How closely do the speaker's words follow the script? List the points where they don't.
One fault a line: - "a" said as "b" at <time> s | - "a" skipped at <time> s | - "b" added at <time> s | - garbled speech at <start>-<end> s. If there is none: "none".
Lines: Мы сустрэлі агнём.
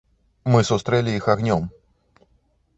- "іх" added at 1.2 s